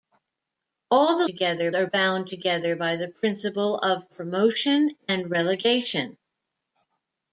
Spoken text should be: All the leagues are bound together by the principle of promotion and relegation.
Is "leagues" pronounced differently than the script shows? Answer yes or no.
yes